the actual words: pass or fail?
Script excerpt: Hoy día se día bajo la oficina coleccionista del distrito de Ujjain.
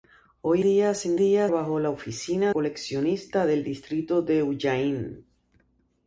pass